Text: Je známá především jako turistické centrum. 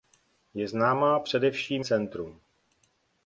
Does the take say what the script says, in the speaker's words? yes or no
no